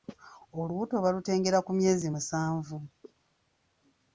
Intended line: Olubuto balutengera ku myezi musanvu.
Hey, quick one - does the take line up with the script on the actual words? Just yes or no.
yes